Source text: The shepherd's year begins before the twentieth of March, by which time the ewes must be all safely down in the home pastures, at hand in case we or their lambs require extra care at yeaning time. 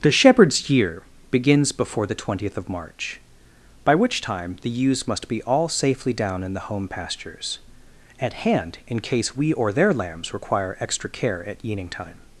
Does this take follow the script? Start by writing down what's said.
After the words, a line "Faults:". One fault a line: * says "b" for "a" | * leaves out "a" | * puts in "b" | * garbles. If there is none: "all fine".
The shepherd's year begins before the twentieth of March, by which time the ewes must be all safely down in the home pastures, at hand in case we or their lambs require extra care at yeaning time.
Faults:
all fine